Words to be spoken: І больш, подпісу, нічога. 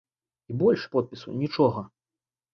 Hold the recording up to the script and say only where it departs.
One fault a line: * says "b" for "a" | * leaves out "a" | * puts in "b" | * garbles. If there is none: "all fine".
all fine